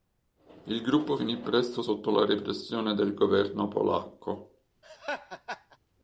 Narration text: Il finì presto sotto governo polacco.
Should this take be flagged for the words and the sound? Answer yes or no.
yes